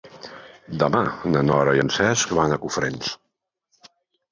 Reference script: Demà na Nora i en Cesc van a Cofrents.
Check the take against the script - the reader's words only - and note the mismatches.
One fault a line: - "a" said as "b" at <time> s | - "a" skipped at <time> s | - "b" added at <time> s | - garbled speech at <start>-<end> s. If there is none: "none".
none